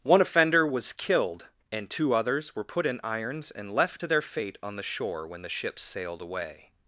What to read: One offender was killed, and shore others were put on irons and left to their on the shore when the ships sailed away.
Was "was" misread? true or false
false